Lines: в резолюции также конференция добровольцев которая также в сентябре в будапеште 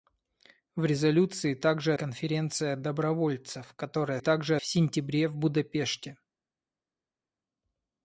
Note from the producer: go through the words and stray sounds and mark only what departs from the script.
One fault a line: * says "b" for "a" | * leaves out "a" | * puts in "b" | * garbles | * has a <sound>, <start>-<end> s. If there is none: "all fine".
all fine